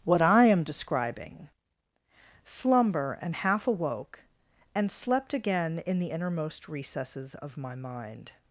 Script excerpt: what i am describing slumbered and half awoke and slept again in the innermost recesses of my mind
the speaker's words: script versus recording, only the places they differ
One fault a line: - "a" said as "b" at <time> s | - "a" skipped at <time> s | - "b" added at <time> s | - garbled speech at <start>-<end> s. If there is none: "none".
- "slumbered" said as "slumber" at 2.4 s